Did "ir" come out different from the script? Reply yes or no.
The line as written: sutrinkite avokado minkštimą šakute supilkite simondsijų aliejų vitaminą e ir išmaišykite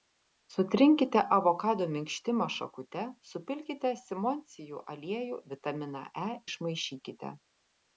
yes